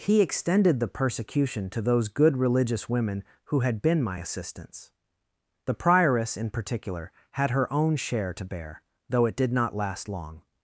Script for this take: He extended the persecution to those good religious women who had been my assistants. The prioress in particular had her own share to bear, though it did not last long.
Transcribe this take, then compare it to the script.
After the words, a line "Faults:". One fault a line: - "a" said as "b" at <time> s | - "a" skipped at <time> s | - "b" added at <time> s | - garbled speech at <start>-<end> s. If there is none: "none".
He extended the persecution to those good religious women who had been my assistants. The prioress in particular had her own share to bear, though it did not last long.
Faults:
none